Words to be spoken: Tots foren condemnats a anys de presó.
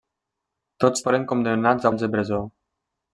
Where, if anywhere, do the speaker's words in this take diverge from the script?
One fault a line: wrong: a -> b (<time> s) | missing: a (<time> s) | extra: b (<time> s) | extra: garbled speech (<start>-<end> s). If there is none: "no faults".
no faults